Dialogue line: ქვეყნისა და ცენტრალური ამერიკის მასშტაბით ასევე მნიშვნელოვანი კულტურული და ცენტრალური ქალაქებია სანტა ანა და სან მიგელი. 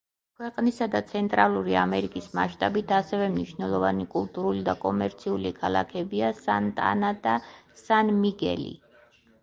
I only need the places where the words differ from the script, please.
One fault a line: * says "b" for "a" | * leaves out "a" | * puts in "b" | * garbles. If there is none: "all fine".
* says "კომერციული" for "ცენტრალური"